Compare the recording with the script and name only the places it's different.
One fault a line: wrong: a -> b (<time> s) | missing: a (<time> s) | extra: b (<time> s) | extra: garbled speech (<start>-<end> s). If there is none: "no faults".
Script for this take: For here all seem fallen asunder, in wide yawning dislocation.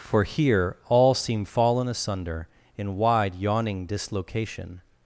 no faults